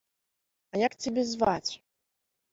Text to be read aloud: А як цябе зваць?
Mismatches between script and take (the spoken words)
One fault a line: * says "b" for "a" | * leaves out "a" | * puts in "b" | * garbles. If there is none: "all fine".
all fine